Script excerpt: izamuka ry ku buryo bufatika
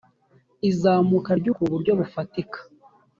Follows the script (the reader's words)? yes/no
yes